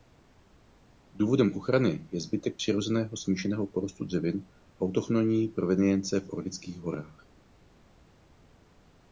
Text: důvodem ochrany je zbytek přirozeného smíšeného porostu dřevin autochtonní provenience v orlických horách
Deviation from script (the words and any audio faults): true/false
false